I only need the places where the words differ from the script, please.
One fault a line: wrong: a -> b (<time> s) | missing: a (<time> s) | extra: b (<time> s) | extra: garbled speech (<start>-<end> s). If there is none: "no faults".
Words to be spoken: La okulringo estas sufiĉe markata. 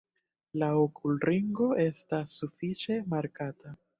no faults